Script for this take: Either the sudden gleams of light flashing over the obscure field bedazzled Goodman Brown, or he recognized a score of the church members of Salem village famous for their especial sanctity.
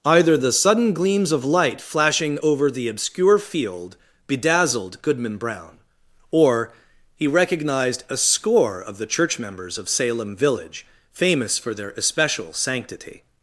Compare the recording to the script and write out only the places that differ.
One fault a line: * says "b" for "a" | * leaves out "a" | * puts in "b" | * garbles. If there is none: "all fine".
all fine